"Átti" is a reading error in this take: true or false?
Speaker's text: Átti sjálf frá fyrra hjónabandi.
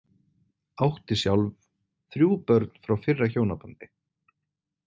false